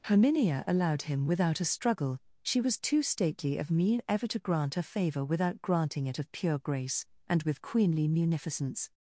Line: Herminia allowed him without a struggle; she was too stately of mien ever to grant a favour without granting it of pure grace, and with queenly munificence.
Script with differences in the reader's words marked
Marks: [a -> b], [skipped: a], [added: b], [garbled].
Herminia allowed him without a struggle; she was too stately of mien ever to grant a favour without granting it of pure grace, and with queenly munificence.